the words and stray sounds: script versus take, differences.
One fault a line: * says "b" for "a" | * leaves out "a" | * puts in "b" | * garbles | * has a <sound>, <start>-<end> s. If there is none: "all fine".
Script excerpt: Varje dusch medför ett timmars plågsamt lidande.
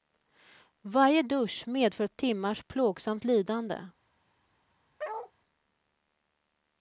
* has a bark, 5.0-5.3 s